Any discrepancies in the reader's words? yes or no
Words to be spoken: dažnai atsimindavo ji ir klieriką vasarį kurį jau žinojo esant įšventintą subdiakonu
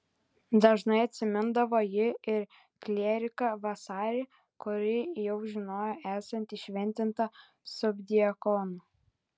no